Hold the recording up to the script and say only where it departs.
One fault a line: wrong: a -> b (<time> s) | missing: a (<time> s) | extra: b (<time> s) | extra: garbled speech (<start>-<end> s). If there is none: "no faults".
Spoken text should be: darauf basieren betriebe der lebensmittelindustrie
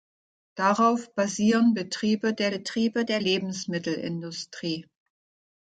extra: betriebe der (2.5 s)